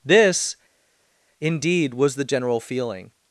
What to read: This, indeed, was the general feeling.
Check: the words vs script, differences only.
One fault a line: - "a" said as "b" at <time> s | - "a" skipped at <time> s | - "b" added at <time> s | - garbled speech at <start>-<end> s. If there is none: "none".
none